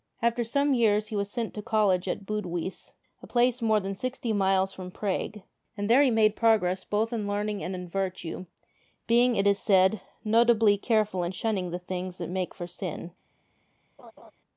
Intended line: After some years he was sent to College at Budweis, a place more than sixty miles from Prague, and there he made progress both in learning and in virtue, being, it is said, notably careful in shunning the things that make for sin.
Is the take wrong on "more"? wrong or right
right